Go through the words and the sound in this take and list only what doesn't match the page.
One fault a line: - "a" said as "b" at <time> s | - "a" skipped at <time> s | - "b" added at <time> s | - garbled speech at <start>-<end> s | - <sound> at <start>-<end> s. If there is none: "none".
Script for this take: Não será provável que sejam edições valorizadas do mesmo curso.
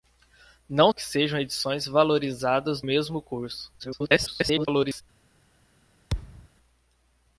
- "será provável" skipped at 0.9 s
- "do" skipped at 2.8 s
- garbled speech at 3.8-5.0 s
- thud at 6.1-6.5 s